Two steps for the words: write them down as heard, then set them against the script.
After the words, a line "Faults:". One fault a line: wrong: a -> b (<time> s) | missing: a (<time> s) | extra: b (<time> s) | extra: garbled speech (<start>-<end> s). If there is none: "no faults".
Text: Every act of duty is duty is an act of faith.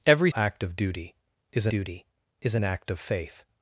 Every act of duty is duty is an act of faith.
Faults:
no faults